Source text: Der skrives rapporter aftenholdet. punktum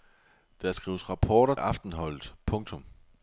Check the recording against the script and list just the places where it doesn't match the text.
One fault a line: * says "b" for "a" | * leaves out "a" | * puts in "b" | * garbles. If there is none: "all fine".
all fine